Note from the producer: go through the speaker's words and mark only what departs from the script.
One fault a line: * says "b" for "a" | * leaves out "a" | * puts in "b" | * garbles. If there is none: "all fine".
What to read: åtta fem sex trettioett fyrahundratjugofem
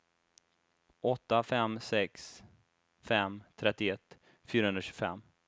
* puts in "fem"